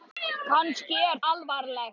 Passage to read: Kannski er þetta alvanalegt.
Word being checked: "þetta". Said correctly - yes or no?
no